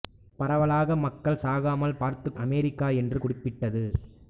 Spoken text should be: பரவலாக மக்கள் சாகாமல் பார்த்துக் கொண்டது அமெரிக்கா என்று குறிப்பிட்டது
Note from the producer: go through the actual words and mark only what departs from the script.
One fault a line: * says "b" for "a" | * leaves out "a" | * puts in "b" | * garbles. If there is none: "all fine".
* leaves out "கொண்டது"